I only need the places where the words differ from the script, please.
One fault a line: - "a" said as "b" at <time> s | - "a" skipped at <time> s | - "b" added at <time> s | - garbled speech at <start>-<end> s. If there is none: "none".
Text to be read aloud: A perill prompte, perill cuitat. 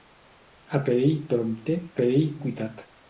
none